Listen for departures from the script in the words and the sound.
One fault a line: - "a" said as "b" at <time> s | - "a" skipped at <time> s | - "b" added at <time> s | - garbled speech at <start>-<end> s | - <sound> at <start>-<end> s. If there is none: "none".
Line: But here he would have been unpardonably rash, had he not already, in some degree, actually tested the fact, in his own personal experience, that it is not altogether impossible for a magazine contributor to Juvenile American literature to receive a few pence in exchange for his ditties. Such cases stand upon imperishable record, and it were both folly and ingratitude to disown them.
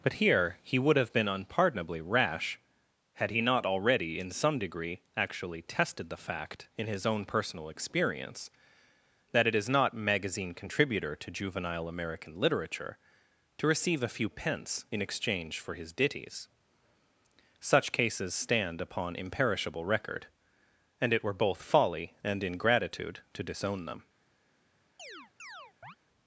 - "altogether impossible for a" skipped at 9.9 s
- chirp at 25.0-26.0 s